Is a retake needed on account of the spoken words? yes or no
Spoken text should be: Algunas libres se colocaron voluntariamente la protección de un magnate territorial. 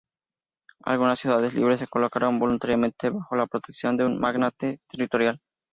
yes